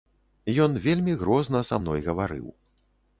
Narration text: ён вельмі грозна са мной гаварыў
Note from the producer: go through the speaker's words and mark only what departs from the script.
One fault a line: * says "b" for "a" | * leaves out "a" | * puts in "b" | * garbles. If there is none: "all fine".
all fine